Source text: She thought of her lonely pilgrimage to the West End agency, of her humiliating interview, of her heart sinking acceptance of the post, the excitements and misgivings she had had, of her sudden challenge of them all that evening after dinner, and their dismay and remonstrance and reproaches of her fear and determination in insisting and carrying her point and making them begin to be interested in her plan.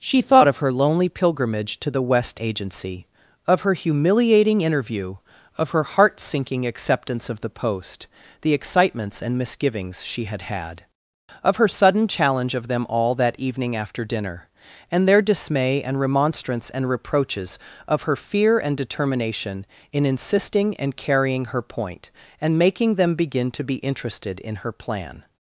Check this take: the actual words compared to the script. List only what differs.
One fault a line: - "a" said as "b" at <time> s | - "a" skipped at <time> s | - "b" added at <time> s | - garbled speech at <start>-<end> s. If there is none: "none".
- "End" skipped at 2.4 s